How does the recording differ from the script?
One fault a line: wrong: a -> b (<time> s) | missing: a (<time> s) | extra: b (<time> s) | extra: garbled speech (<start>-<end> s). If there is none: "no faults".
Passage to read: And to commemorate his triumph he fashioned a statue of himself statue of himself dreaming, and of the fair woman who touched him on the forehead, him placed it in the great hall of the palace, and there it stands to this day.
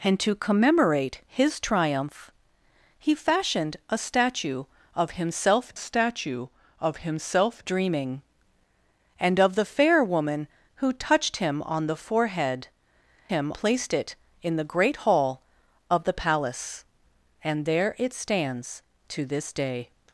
no faults